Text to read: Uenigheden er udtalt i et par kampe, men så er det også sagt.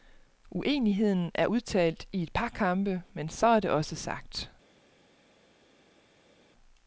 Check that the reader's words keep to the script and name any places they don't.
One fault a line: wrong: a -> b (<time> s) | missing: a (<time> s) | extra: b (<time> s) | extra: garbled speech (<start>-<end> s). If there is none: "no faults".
no faults